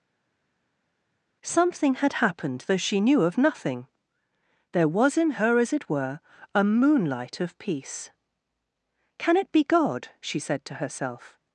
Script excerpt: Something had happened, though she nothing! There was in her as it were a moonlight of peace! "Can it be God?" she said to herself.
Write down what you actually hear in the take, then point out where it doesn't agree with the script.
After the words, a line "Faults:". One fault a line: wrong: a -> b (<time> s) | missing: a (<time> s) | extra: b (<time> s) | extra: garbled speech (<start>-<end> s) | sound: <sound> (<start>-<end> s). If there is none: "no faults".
Something had happened, though she knew of nothing! There was in her as it were a moonlight of peace! "Can it be God?" she said to herself.
Faults:
extra: knew of (3.0 s)